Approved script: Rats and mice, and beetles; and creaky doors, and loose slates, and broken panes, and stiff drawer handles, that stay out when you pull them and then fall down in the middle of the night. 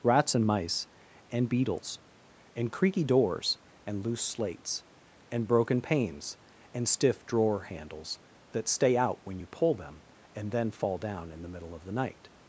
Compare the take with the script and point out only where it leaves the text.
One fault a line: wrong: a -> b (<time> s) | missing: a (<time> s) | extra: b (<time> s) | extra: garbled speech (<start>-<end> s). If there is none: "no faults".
no faults